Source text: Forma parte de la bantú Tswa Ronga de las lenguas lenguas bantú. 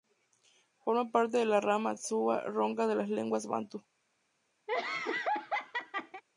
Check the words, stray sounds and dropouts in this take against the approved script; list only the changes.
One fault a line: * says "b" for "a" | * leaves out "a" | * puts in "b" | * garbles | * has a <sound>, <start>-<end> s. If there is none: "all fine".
* says "rama" for "bantú"
* leaves out "lenguas"
* has a laugh, 4.7-6.2 s